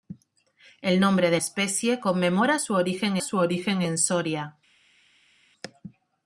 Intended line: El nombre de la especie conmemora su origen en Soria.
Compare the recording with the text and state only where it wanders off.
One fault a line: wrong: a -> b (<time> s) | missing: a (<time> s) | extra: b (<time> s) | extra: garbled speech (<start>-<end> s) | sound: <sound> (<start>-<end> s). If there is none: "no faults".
missing: la (1.4 s)
extra: su origen (3.2 s)